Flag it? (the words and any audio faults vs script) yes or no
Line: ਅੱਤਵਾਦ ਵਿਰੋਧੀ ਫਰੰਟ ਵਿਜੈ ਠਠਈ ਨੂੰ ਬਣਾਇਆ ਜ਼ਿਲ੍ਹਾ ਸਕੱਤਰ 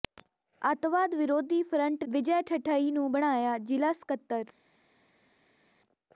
no